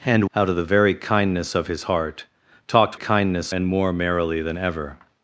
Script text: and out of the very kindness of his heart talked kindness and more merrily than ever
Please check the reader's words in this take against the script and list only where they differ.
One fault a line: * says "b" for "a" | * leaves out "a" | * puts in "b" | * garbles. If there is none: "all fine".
all fine